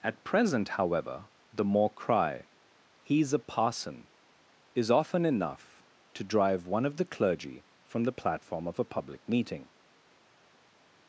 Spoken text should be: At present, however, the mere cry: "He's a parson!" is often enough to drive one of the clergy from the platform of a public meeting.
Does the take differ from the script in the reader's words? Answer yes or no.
yes